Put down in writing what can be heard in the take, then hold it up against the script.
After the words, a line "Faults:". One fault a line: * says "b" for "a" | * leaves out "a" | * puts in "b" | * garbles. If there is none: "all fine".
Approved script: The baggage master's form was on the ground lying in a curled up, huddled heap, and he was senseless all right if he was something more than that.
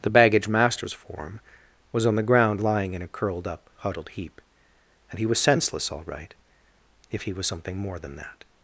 The baggage master's form was on the ground lying in a curled up, huddled heap, and he was senseless all right if he was something more than that.
Faults:
all fine